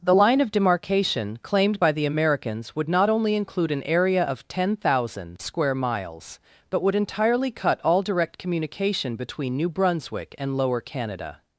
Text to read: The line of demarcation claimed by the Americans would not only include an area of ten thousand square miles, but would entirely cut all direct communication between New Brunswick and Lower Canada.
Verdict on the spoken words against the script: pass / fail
pass